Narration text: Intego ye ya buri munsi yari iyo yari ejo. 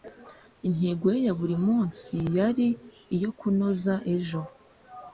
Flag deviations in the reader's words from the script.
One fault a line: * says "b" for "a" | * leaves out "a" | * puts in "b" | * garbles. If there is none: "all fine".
* says "kunoza" for "yari"